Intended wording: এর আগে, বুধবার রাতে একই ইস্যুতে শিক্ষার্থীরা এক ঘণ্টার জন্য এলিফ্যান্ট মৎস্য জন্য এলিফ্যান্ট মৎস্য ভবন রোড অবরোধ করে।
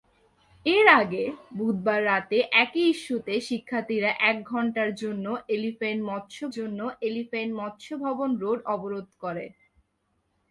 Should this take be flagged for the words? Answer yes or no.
no